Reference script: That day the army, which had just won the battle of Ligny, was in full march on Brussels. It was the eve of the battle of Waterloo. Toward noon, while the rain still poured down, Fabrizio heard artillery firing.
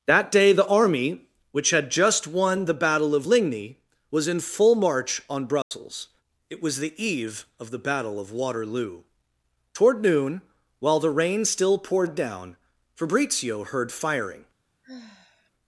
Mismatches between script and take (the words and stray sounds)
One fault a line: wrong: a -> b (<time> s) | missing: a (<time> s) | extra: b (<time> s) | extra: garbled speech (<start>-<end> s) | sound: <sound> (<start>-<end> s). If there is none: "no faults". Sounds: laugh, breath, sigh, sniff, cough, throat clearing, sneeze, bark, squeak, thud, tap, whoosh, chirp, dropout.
sound: dropout (5.6-5.7 s)
missing: artillery (13.9 s)
sound: sigh (14.8-15.5 s)